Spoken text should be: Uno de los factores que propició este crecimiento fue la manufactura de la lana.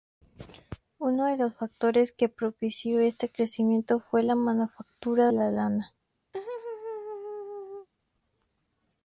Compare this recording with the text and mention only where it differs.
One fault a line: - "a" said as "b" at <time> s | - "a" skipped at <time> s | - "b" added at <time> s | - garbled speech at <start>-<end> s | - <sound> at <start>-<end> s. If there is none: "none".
- "de" skipped at 5.3 s
- laugh at 6.3-7.9 s